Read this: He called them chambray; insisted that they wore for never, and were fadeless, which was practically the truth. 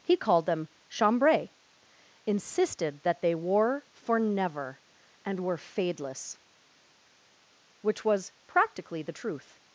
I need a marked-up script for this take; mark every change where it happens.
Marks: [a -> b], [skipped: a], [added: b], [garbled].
He called them chambray; insisted that they wore for never, and were fadeless, which was practically the truth.